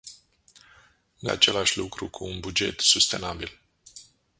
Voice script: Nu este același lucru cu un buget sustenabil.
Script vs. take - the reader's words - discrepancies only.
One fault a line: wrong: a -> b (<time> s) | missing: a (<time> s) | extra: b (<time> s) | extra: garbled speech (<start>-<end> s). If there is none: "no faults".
missing: este (1.3 s)